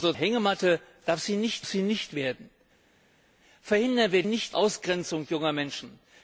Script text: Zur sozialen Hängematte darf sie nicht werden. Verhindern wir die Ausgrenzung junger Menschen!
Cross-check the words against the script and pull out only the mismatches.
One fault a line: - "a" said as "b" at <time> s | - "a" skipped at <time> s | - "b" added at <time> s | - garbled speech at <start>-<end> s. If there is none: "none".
- "sozialen" skipped at 0.1 s
- "sie nicht" added at 1.6 s
- "die" said as "nicht" at 4.2 s